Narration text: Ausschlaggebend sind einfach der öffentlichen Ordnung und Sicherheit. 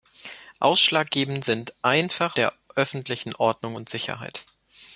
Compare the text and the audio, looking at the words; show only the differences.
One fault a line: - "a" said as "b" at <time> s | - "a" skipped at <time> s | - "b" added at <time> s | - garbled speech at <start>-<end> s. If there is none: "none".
none